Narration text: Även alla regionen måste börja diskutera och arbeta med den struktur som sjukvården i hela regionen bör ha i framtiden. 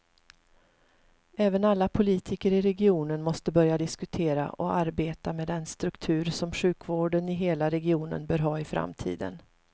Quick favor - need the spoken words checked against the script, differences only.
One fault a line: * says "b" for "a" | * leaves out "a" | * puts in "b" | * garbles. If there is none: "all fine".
* puts in "politiker i"